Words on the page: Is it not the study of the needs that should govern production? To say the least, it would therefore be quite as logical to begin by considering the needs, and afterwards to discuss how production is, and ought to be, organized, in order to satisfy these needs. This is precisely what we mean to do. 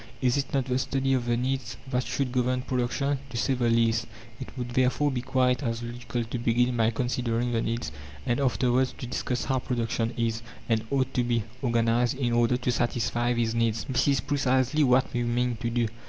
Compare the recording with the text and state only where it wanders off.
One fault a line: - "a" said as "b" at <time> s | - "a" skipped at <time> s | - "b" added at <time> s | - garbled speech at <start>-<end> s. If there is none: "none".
none